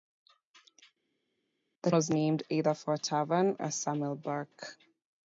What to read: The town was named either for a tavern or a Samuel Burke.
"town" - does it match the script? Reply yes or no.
no